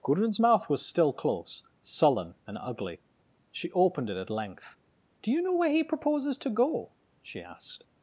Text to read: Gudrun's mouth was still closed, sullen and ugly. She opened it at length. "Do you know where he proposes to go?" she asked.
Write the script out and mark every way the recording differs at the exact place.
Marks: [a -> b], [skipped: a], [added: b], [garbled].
Gudrun's mouth was still [closed, -> close] sullen and ugly. She opened it at length. "Do you know where he proposes to go?" she asked.